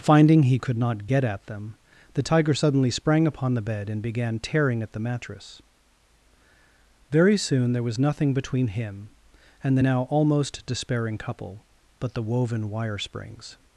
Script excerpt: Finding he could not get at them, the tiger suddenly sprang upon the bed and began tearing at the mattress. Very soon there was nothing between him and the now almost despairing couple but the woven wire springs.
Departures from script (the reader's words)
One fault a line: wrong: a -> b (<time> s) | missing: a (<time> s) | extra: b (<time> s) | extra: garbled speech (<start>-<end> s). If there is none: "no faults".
no faults